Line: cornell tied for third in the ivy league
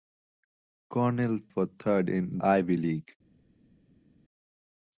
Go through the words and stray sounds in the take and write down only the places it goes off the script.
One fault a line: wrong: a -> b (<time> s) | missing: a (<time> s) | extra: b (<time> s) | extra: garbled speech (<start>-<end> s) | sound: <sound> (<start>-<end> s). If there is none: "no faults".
missing: tied (1.4 s)
missing: the (2.4 s)